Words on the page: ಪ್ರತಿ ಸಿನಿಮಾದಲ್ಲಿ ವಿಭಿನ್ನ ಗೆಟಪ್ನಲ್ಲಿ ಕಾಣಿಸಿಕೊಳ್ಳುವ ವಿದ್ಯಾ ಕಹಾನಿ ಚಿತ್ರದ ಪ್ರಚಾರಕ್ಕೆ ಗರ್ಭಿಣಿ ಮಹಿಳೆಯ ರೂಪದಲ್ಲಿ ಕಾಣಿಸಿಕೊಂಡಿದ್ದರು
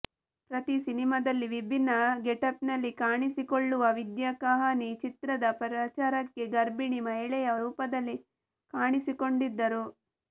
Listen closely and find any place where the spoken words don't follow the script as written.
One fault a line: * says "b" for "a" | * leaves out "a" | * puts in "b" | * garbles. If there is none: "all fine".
all fine